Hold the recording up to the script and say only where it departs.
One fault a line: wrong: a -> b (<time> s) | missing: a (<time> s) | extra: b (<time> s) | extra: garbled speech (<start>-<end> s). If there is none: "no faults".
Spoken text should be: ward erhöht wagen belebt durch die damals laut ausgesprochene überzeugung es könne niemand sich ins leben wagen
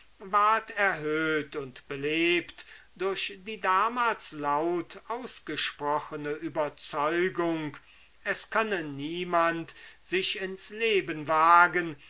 wrong: wagen -> und (1.6 s)